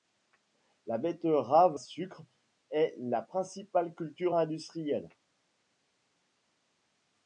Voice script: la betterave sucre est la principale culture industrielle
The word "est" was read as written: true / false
true